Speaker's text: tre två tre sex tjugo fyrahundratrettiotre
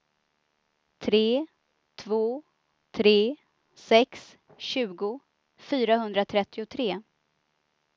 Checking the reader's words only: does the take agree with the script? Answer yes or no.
yes